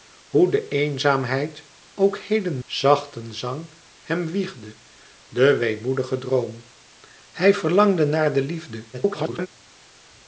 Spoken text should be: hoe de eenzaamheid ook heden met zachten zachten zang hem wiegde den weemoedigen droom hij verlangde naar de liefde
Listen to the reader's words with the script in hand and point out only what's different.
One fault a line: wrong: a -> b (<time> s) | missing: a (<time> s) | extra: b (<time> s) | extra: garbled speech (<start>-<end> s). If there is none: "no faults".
missing: met zachten (2.6 s)
extra: garbled speech (8.9-9.5 s)